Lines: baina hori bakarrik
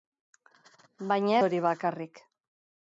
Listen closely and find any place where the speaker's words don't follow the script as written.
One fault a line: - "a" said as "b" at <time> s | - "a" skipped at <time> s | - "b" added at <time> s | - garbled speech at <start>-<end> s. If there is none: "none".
none